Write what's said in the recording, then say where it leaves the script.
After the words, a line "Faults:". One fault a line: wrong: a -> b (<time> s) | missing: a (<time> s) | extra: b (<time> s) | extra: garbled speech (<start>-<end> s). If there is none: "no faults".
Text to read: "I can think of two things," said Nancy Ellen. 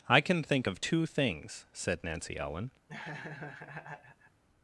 "I can think of two things," said Nancy Ellen.
Faults:
no faults